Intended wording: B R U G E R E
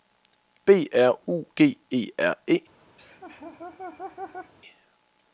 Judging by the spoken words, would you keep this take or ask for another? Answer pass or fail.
pass